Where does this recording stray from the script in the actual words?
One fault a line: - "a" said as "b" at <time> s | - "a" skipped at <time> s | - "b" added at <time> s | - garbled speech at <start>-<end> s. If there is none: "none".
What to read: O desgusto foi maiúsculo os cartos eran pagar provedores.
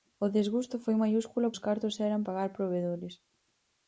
none